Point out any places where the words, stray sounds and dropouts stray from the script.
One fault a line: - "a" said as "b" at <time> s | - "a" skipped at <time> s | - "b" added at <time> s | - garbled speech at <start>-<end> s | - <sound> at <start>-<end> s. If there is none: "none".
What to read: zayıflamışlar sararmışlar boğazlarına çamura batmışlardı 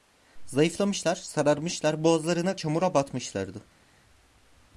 none